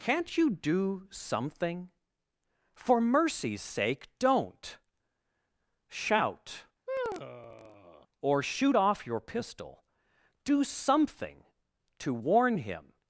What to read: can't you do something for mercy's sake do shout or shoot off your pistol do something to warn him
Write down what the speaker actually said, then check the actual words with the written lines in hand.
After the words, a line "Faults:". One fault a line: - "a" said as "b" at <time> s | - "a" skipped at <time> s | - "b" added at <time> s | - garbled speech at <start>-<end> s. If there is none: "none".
can't you do something for mercy's sake don't shout or shoot off your pistol do something to warn him
Faults:
- "do" said as "don't" at 4.2 s